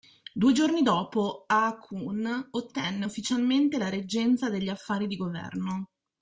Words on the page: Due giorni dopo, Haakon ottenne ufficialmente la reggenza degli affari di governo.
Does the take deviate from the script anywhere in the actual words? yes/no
no